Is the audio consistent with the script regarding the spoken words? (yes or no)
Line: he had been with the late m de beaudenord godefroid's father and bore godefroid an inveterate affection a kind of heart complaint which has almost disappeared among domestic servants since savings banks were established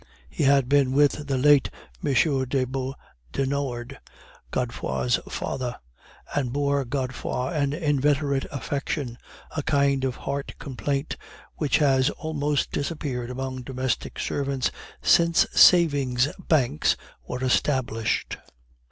yes